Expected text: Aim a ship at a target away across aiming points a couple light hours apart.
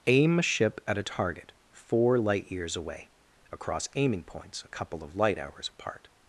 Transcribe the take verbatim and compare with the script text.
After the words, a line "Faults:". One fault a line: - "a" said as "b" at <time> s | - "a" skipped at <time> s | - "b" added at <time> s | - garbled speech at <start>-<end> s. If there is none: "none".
Aim a ship at a target four light years away across aiming points a couple of light hours apart.
Faults:
- "four light years" added at 1.7 s
- "of" added at 5.0 s